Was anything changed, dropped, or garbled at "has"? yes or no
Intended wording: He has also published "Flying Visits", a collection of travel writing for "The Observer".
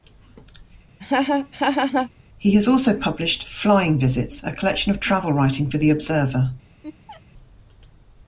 no